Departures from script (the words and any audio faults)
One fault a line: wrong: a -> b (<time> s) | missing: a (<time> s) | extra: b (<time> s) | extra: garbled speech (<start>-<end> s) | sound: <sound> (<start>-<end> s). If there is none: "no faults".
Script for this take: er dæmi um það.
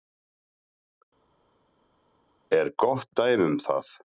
extra: gott (2.8 s)